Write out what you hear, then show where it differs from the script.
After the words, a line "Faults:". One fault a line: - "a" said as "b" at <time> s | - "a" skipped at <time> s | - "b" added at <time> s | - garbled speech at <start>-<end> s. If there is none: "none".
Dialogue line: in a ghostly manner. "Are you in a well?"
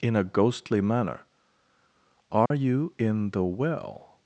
in a ghostly manner. "Are you in the well?"
Faults:
- "a" said as "the" at 3.3 s